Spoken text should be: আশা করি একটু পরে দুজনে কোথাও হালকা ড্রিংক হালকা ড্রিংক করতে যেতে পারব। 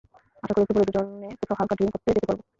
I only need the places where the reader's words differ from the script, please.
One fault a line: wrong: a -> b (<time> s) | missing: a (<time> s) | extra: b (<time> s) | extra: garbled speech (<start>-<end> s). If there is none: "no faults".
missing: হালকা ড্রিংক (1.9 s)